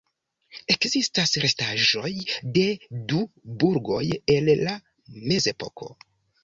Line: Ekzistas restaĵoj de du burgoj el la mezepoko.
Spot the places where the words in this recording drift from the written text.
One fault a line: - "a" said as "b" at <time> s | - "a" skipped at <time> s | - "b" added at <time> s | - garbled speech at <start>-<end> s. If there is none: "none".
none